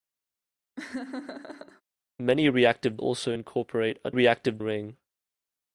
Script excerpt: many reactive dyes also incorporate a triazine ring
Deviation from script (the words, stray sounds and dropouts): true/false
true